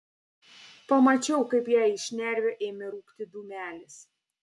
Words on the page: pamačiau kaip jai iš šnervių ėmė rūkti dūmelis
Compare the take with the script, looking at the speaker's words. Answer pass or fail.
pass